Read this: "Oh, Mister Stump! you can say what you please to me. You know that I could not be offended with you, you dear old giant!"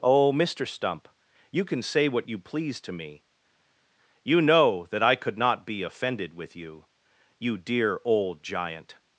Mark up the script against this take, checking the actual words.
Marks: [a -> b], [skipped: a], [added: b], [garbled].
"Oh, Mister Stump! you can say what you please to me. You know that I could not be offended with you, you dear old giant!"